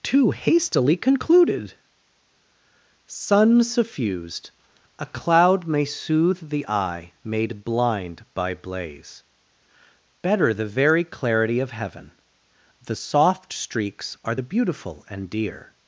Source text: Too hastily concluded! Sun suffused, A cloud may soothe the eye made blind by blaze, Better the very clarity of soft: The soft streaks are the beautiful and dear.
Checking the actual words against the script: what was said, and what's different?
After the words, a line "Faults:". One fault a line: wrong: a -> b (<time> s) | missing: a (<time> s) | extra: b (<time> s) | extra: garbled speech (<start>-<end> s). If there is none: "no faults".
Too hastily concluded! Sun suffused, A cloud may soothe the eye made blind by blaze, Better the very clarity of heaven: The soft streaks are the beautiful and dear.
Faults:
wrong: soft -> heaven (11.7 s)